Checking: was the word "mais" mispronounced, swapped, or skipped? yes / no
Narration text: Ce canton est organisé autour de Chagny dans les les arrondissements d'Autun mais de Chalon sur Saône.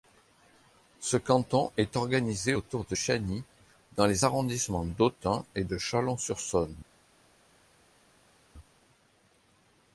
yes